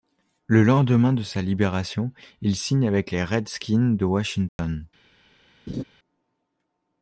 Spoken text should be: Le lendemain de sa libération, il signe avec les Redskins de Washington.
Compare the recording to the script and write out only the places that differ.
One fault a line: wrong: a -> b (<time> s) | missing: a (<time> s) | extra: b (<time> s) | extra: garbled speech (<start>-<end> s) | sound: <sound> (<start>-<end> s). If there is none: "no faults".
sound: dropout (4.5-4.6 s)
sound: laugh (5.7-5.8 s)